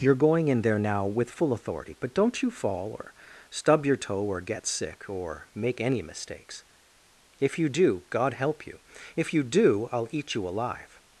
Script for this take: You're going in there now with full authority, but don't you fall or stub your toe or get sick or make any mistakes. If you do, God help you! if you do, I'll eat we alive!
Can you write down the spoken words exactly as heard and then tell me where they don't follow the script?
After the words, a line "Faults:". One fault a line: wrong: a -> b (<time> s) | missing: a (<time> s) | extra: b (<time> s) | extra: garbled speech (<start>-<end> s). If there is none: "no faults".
You're going in there now with full authority, but don't you fall or stub your toe or get sick or make any mistakes. If you do, God help you! if you do, I'll eat you alive!
Faults:
wrong: we -> you (10.3 s)